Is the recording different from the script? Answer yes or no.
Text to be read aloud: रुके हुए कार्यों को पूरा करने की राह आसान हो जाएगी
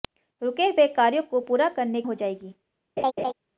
yes